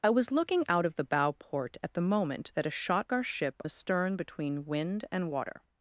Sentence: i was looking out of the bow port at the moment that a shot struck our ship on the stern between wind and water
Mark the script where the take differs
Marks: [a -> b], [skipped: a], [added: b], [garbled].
i was looking out of the bow port at the moment that a shot [skipped: struck] our ship [skipped: on] the stern between wind and water